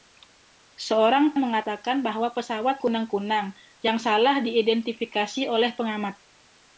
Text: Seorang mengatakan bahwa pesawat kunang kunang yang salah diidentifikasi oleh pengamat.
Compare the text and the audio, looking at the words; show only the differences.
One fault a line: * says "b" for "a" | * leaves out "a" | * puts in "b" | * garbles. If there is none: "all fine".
all fine